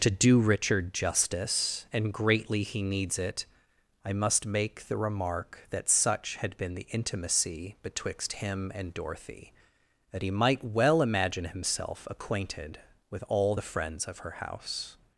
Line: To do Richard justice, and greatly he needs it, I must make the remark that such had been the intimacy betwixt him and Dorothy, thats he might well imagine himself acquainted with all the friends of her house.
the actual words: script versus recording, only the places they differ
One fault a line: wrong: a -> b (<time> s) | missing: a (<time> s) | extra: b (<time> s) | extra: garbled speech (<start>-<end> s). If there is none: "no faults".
wrong: thats -> that (10.1 s)